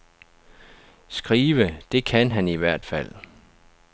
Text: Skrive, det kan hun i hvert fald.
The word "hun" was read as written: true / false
false